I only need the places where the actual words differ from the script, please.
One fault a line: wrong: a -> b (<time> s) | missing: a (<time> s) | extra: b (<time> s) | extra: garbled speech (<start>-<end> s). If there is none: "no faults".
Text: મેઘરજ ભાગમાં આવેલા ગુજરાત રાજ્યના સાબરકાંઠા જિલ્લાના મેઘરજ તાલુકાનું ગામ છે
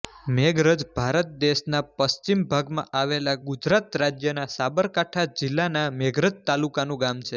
extra: ભારત દેશના પશ્ચિમ (0.9 s)